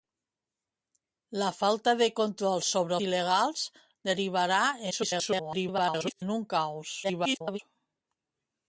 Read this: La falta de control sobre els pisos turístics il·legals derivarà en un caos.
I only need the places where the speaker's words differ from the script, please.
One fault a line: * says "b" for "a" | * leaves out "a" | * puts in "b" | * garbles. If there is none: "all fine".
* leaves out "els pisos turístics"
* garbles
* garbles